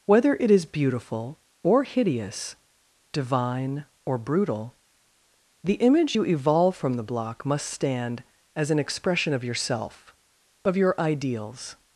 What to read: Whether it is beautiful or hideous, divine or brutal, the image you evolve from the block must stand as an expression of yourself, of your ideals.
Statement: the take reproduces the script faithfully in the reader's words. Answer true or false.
true